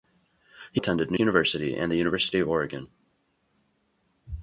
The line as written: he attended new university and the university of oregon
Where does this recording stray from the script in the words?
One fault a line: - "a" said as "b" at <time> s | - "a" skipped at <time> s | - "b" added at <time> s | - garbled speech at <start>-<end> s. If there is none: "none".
none